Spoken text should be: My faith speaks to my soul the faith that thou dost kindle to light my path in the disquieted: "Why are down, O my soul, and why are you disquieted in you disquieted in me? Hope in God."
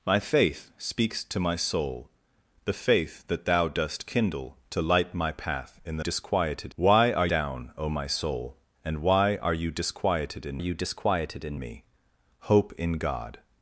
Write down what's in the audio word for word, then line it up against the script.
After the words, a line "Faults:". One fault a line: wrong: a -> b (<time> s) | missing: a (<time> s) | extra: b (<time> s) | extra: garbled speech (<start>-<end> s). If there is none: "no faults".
My faith speaks to my soul the faith that thou dost kindle to light my path in the disquieted: "Why are down, O my soul, and why are you disquieted in you disquieted in me? Hope in God."
Faults:
no faults